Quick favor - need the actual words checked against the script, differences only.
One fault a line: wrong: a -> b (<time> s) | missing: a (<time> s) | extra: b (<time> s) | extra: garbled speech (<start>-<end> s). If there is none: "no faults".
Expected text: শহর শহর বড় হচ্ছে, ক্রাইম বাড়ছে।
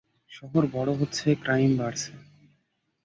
missing: শহর (0.6 s)